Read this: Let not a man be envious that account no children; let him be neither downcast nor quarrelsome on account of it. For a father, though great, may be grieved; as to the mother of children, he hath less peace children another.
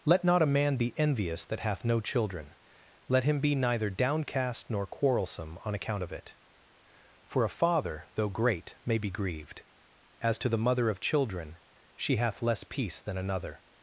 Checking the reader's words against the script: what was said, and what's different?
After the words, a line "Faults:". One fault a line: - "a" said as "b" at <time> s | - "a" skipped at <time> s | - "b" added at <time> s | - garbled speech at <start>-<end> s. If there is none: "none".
Let not a man be envious that hath no children; let him be neither downcast nor quarrelsome on account of it. For a father, though great, may be grieved; as to the mother of children, she hath less peace than another.
Faults:
- "account" said as "hath" at 1.6 s
- "he" said as "she" at 12.0 s
- "children" said as "than" at 13.0 s